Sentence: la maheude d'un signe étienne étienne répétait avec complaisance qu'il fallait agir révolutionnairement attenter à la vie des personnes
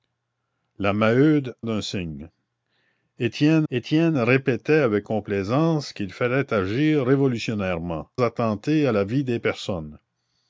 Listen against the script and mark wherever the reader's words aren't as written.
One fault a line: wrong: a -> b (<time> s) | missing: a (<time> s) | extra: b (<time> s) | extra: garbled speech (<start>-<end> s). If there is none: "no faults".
no faults